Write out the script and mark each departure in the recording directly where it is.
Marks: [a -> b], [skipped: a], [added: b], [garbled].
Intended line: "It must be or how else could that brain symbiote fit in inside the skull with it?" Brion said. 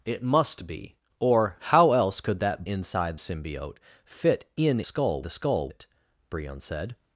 "It must be or how else could that [brain -> inside] symbiote fit in [inside -> skull] the skull [skipped: with] it?" Brion said.